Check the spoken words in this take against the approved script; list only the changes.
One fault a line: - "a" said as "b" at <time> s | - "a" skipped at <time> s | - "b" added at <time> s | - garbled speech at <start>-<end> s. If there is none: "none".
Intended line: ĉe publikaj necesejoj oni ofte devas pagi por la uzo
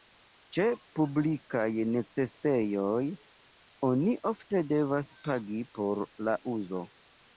none